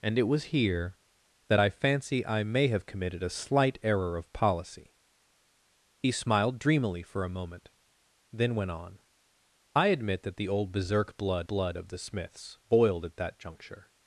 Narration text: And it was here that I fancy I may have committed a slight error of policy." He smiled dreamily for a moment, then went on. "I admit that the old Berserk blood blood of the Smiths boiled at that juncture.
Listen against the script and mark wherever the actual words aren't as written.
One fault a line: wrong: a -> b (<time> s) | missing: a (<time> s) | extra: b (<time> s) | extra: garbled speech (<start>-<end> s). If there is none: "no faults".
no faults